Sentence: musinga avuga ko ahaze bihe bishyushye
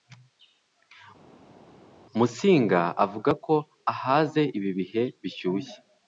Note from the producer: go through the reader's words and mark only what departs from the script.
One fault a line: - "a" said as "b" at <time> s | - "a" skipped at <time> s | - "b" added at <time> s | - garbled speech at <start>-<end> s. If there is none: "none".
- "ibi" added at 4.6 s